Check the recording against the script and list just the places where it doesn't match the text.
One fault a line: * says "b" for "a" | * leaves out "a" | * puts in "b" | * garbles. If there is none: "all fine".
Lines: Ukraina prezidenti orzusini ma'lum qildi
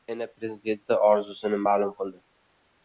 all fine